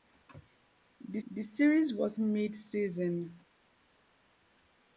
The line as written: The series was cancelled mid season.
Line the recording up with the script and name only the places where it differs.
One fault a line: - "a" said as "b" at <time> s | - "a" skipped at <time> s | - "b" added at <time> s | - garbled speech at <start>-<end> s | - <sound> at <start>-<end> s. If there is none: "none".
- "the" added at 1.3 s
- "cancelled" skipped at 2.2 s